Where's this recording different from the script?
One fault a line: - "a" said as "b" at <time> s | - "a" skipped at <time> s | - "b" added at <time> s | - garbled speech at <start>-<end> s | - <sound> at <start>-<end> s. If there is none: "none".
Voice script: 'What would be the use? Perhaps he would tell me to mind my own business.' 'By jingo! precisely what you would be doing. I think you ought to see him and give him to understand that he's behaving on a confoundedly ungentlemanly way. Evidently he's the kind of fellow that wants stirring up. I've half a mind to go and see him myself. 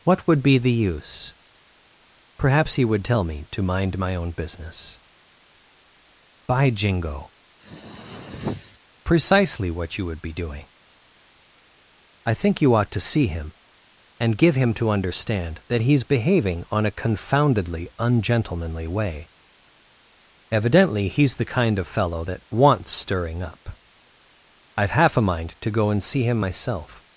- throat clearing at 7.6-8.8 s